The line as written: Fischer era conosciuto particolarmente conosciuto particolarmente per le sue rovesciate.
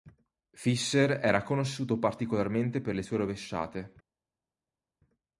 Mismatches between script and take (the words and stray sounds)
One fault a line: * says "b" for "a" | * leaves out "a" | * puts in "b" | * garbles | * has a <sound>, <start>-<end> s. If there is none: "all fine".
* leaves out "conosciuto particolarmente"